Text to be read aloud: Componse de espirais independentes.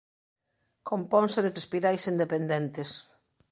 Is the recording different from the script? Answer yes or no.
no